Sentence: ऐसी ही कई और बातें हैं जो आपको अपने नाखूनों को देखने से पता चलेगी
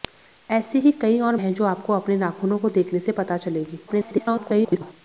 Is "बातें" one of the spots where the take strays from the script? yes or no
yes